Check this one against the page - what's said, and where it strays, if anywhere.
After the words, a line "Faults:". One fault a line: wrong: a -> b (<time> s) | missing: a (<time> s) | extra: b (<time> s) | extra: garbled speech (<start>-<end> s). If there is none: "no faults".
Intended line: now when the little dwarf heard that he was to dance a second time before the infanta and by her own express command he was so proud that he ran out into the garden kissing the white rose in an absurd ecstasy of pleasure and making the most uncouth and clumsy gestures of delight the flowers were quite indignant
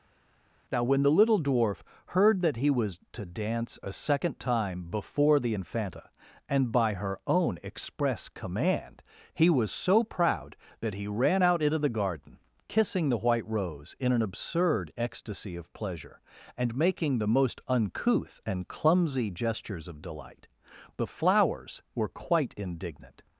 now when the little dwarf heard that he was to dance a second time before the infanta and by her own express command he was so proud that he ran out into the garden kissing the white rose in an absurd ecstasy of pleasure and making the most uncouth and clumsy gestures of delight the flowers were quite indignant
Faults:
no faults